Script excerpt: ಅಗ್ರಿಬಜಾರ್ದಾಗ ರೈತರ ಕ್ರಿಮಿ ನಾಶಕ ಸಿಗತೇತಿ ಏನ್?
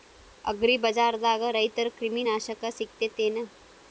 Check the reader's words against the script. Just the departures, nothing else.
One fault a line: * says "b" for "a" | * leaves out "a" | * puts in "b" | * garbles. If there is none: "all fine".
all fine